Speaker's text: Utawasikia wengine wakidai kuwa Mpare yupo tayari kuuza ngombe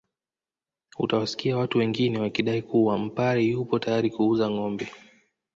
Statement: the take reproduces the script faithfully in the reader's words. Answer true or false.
false